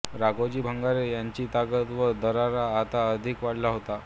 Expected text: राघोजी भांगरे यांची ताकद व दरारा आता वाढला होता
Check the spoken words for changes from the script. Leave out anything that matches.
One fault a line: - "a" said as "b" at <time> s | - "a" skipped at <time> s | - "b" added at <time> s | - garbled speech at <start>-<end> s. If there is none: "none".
- "अधिक" added at 3.1 s